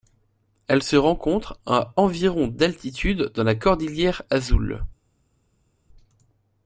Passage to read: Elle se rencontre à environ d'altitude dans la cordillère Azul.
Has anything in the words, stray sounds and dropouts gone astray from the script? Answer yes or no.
no